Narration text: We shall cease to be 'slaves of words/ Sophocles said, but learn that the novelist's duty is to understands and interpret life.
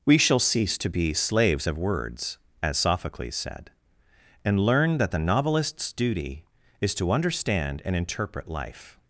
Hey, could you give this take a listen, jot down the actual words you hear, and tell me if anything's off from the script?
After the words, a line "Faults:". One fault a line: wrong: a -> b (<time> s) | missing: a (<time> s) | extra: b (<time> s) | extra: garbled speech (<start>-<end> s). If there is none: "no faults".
We shall cease to be 'slaves of words/ as Sophocles said, and learn that the novelist's duty is to understand and interpret life.
Faults:
extra: as (2.6 s)
wrong: but -> and (4.4 s)
wrong: understands -> understand (7.1 s)